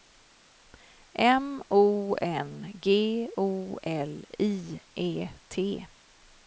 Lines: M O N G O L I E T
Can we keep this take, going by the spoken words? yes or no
yes